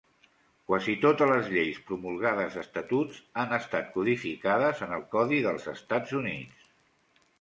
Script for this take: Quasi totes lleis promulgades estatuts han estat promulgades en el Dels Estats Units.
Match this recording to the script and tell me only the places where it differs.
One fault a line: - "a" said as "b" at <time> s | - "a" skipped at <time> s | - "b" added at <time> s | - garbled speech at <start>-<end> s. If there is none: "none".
- "les" added at 1.3 s
- "promulgades" said as "codificades" at 4.0 s
- "Codi" added at 5.2 s